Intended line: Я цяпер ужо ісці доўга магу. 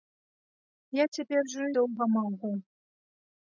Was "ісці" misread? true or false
true